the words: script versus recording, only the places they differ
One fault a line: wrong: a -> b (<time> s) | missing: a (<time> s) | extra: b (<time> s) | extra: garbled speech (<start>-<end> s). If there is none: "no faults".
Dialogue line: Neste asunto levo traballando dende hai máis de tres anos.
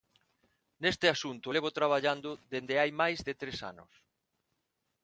no faults